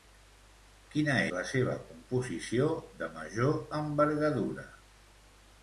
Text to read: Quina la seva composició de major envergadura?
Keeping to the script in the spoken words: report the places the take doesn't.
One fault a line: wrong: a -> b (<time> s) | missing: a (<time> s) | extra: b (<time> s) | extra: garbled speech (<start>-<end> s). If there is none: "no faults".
no faults